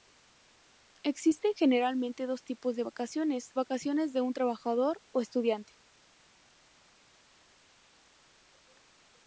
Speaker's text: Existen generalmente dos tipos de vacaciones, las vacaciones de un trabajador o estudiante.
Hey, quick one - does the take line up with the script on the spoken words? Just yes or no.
no